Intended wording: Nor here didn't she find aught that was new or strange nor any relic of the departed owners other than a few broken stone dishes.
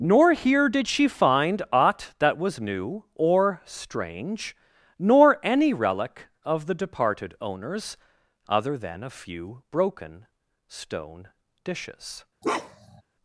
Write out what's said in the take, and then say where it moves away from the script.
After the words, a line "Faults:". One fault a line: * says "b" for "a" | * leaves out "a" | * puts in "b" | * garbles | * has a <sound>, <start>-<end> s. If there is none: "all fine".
Nor here did she find aught that was new or strange nor any relic of the departed owners other than a few broken stone dishes.
Faults:
* says "did" for "didn't"
* has a bark, 12.4-13.0 s